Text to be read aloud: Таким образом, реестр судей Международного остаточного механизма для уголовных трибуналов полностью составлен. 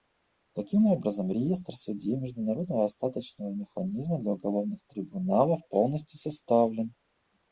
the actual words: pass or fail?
pass